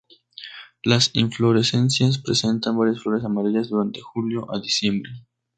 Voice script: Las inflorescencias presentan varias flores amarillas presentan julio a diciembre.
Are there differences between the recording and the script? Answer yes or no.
yes